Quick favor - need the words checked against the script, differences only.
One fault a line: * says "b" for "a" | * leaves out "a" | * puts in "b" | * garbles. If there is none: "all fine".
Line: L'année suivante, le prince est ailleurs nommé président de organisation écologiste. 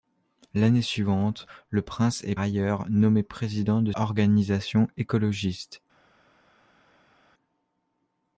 all fine